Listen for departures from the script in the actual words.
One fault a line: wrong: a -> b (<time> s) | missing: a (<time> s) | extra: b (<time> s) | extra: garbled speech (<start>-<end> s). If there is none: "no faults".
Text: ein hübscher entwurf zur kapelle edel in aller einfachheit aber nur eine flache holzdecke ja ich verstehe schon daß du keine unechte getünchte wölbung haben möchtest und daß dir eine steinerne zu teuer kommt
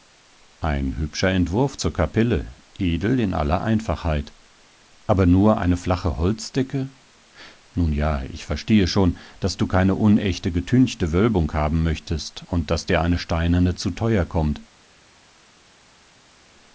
extra: nun (7.7 s)